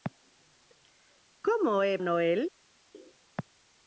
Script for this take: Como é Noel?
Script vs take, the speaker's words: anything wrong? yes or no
no